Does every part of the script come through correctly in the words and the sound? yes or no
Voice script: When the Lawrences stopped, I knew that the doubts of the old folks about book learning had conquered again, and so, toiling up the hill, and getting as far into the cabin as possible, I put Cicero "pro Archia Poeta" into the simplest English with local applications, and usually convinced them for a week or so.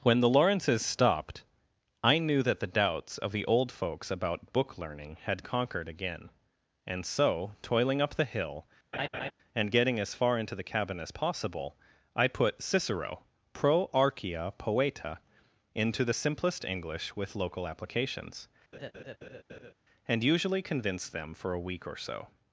no